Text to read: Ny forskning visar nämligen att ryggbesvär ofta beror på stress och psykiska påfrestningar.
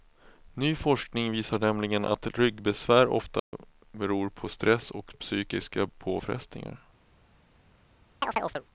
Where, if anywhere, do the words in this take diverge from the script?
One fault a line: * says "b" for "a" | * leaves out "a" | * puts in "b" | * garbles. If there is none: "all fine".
all fine